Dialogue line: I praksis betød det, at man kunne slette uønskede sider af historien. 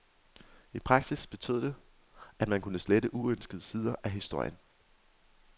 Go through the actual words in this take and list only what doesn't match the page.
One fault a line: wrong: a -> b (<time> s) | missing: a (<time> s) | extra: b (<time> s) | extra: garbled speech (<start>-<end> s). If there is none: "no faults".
no faults